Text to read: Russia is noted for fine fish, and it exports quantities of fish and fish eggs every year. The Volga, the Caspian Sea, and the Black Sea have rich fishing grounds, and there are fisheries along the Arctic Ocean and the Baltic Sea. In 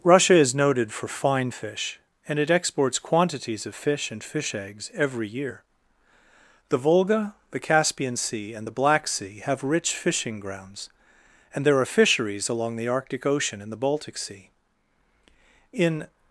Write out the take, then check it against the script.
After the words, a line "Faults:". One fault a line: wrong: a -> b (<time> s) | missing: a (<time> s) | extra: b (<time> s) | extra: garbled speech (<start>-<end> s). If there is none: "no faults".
Russia is noted for fine fish, and it exports quantities of fish and fish eggs every year. The Volga, the Caspian Sea, and the Black Sea have rich fishing grounds, and there are fisheries along the Arctic Ocean and the Baltic Sea. In
Faults:
no faults